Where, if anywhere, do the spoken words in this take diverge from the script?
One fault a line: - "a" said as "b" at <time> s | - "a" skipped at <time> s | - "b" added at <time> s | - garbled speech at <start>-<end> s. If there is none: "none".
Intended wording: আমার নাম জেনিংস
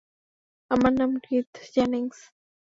- "কিথ" added at 1.2 s